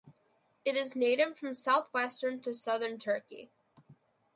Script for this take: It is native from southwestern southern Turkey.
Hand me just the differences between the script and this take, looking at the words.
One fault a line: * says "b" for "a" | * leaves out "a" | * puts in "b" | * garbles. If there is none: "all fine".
* puts in "to"